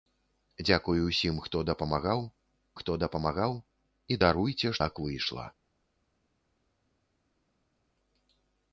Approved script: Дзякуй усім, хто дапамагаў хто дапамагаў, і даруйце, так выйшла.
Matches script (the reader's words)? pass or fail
pass